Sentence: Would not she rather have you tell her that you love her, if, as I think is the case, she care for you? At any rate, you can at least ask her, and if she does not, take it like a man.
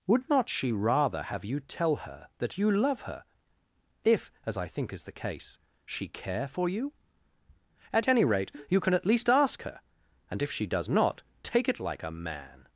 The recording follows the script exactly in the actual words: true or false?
true